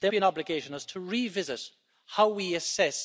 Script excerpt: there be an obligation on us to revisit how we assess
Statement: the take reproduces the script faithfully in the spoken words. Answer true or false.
true